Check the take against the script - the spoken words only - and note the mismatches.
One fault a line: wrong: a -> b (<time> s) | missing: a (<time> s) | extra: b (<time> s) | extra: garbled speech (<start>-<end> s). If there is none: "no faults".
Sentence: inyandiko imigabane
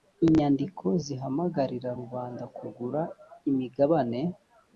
extra: zihamagarira rubanda kugura (1.0 s)